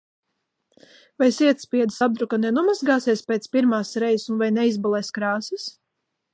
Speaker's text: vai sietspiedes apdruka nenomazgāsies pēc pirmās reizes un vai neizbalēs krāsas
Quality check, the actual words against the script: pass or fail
pass